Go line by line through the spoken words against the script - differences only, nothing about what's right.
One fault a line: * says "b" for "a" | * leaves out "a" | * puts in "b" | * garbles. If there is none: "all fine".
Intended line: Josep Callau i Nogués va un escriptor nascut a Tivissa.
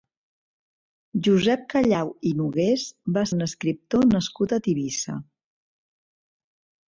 all fine